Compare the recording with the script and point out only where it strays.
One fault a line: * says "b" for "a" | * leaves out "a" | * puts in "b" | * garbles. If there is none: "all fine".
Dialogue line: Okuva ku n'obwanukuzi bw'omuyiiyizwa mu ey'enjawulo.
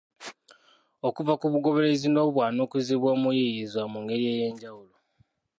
* puts in "bugoberezi"
* puts in "ngeri"